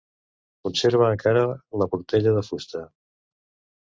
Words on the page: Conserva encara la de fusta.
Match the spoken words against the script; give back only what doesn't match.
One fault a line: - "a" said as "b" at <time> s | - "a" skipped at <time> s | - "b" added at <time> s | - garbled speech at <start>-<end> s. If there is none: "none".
- "portella" added at 1.9 s